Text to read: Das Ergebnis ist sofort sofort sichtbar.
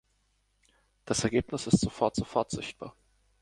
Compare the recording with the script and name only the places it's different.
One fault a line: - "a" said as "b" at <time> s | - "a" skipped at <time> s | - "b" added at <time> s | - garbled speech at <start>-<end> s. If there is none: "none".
none